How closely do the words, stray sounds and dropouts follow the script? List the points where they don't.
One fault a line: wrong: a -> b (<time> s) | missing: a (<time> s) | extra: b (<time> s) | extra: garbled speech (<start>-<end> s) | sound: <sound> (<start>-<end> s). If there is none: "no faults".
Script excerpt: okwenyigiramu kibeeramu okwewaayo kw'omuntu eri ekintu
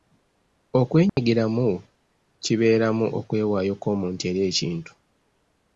sound: dropout (1.1-1.2 s)